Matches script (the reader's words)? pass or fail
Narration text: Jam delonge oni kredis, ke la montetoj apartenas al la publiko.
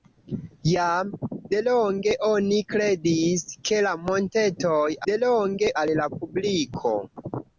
fail